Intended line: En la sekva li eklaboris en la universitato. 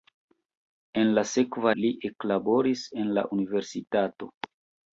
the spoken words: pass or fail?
pass